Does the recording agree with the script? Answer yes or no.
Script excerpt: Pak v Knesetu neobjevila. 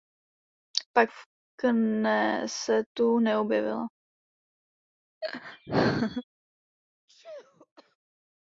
yes